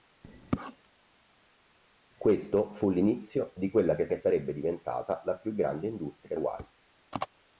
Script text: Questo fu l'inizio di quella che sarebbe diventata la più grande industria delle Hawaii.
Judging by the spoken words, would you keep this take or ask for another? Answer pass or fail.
fail